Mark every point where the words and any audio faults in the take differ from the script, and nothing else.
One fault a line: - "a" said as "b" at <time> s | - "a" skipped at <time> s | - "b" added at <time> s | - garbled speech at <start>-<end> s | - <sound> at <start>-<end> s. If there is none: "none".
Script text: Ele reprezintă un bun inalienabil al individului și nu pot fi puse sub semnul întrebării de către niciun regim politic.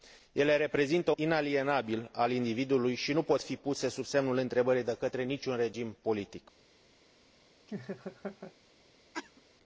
- "un bun" skipped at 1.1 s
- laugh at 7.7-8.5 s
- cough at 9.1-9.4 s